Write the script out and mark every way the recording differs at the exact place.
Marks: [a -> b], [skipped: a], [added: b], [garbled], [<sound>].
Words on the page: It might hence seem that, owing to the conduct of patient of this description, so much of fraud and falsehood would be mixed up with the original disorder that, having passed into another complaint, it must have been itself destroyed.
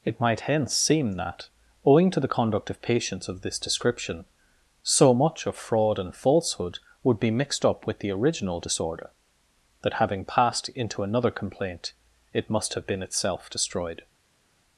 It might hence seem that, owing to the conduct of [patient -> patients] of this description, so much of fraud and falsehood would be mixed up with the original disorder that, having passed into another complaint, it must have been itself destroyed.